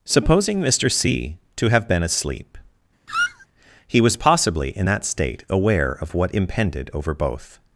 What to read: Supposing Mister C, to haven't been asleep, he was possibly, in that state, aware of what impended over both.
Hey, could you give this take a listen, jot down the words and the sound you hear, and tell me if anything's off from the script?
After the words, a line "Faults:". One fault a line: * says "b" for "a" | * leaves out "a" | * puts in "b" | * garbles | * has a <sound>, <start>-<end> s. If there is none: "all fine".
Supposing Mister C, to have been asleep, he was possibly, in that state, aware of what impended over both.
Faults:
* says "have" for "haven't"
* has a squeak, 3.1-3.5 s